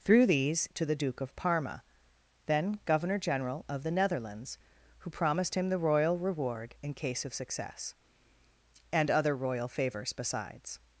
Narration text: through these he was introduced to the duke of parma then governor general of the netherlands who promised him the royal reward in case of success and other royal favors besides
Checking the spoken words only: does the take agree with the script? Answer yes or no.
no